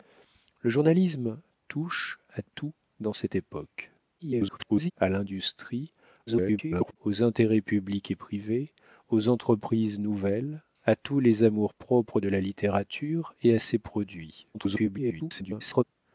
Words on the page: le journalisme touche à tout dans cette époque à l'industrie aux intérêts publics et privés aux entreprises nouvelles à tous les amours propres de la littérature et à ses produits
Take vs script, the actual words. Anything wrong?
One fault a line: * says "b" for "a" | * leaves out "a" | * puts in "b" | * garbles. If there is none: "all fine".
* garbles
* garbles
* garbles